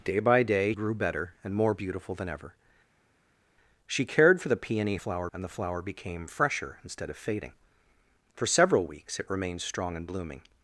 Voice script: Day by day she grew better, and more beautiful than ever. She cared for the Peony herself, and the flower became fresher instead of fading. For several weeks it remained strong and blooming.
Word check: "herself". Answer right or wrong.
wrong